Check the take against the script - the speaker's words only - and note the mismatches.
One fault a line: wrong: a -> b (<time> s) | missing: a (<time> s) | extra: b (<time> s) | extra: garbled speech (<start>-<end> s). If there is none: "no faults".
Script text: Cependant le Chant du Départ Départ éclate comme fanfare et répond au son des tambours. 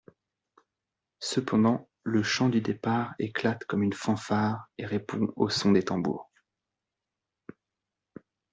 missing: Départ (3.1 s)
extra: une (3.8 s)